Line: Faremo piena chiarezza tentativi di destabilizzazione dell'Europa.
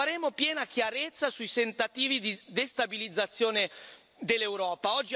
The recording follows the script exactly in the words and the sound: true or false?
false